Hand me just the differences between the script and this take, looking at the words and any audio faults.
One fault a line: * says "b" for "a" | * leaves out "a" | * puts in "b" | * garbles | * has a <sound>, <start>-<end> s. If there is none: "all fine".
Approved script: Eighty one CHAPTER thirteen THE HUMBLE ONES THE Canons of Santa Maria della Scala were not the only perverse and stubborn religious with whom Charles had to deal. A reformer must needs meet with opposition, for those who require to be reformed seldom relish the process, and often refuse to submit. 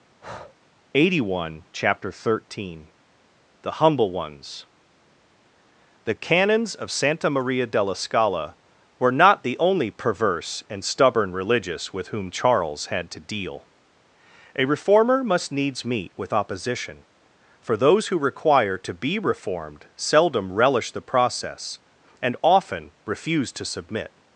* has a breath, 0.2-0.6 s